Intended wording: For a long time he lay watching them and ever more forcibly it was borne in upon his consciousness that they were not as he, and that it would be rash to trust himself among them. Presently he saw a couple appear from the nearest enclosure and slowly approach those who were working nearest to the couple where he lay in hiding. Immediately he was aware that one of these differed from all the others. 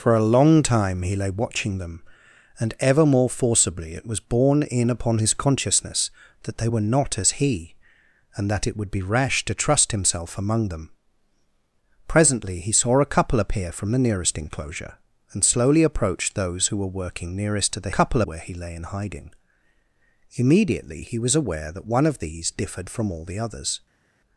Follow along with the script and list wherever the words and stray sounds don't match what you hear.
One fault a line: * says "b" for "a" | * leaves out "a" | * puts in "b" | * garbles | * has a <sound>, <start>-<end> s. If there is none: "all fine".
all fine